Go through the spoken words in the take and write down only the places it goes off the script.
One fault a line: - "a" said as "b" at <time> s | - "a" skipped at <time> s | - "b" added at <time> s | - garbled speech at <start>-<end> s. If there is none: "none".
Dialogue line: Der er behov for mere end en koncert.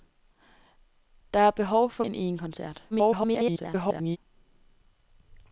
- "mere" skipped at 2.0 s
- garbled speech at 2.9-4.2 s